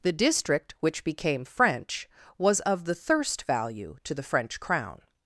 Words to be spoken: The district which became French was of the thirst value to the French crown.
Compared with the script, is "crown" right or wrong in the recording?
right